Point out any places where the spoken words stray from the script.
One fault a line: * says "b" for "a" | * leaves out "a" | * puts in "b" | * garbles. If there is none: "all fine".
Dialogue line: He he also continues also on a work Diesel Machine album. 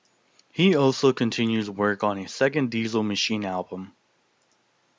* leaves out "he"
* says "work" for "also"
* says "second" for "work"